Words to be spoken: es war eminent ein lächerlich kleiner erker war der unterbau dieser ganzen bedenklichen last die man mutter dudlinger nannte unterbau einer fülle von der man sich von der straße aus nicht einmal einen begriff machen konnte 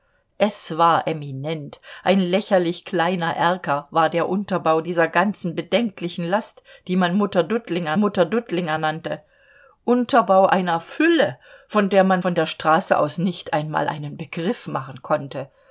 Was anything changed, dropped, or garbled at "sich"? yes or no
yes